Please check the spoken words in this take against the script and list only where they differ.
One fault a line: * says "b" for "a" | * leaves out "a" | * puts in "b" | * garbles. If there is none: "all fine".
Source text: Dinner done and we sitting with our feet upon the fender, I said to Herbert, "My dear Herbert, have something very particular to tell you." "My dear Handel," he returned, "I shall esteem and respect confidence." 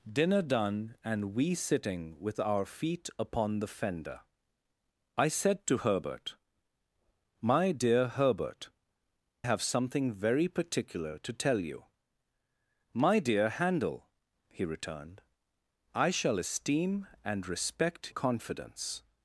all fine